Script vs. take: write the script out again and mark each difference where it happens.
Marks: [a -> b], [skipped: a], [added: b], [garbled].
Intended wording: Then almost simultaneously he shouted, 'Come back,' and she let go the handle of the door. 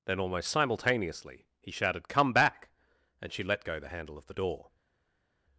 Then almost simultaneously he shouted, 'Come back,' and she let go the handle of the door.